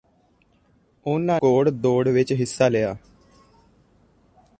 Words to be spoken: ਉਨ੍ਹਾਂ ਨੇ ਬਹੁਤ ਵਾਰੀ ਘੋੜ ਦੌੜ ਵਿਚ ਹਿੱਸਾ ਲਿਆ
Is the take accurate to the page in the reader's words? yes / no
no